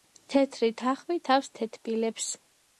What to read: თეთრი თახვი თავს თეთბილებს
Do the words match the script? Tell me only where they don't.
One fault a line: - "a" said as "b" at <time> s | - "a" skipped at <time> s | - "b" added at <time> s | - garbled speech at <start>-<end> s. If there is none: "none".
none